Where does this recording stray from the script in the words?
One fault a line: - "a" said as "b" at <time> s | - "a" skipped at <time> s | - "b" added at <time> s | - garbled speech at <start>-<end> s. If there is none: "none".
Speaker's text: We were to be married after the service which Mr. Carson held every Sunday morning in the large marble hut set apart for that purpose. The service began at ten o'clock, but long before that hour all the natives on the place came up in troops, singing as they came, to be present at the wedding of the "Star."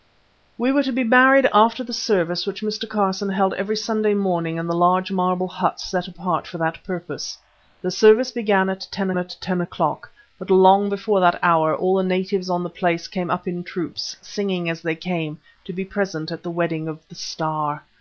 - "at ten" added at 9.1 s